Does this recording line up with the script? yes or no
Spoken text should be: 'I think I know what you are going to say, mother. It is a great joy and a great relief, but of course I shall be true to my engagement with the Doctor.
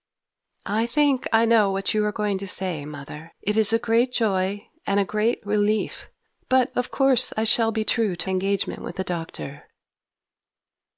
no